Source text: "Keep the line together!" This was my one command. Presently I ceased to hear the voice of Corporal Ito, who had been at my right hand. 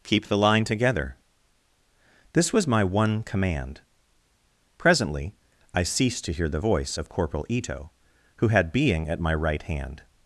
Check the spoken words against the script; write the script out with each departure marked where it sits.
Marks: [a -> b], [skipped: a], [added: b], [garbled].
"Keep the line together!" This was my one command. Presently I ceased to hear the voice of Corporal Ito, who had [been -> being] at my right hand.